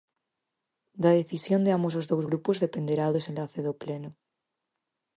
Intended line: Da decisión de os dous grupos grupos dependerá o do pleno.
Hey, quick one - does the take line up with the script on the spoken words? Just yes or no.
no